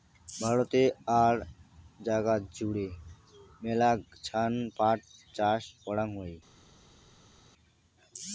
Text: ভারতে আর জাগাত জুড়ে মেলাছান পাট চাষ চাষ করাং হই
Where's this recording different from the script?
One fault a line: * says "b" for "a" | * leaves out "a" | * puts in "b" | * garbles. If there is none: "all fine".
* leaves out "চাষ"